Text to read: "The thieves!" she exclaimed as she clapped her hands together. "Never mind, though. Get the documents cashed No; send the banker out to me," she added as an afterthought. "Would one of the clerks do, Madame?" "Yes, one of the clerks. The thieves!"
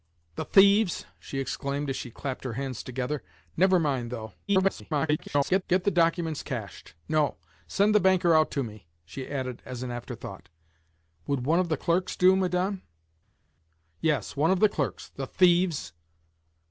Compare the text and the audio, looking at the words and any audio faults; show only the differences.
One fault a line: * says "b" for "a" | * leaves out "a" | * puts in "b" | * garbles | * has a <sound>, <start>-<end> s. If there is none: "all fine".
* garbles